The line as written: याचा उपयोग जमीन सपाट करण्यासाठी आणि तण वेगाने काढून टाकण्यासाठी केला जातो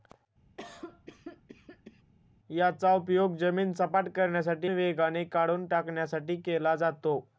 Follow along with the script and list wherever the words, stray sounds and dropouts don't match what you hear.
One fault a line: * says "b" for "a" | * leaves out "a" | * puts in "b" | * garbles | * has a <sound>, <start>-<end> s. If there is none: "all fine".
* has a cough, 0.6-2.0 s
* leaves out "आणि तण"